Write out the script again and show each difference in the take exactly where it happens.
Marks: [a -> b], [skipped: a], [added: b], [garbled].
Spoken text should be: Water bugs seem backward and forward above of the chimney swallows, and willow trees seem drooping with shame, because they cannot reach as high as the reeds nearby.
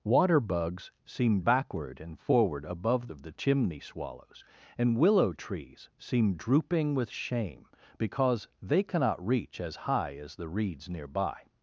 Water bugs seem backward and forward above of the chimney swallows, and willow trees seem drooping with shame, because they cannot reach as high as the reeds nearby.